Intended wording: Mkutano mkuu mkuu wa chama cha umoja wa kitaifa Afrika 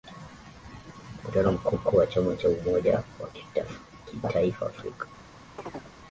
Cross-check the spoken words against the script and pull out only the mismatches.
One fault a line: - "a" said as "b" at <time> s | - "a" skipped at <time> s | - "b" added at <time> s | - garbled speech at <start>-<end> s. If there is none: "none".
none